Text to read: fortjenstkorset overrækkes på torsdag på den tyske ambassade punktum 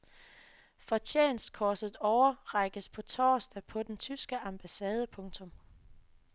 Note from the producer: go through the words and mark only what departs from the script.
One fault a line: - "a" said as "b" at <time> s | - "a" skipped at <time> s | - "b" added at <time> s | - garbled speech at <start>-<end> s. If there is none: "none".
none